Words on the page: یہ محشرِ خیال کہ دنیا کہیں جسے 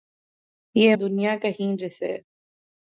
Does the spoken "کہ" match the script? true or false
false